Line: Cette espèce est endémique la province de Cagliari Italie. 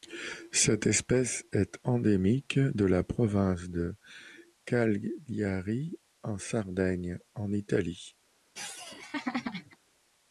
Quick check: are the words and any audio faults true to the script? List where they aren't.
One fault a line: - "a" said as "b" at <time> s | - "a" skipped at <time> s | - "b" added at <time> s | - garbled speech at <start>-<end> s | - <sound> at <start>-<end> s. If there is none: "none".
- "de" added at 2.6 s
- "en Sardaigne en" added at 6.2 s
- laugh at 8.5-9.8 s